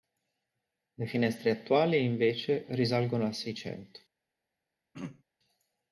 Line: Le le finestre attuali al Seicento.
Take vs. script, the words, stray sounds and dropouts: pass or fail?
fail